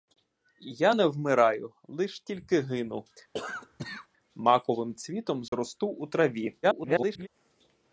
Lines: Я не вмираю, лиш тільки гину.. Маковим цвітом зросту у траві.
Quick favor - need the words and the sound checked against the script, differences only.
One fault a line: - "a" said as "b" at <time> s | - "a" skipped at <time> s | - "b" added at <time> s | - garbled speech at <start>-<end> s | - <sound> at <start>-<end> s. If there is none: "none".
- cough at 3.3-4.1 s
- dropout at 5.5-5.5 s
- garbled speech at 6.6-7.3 s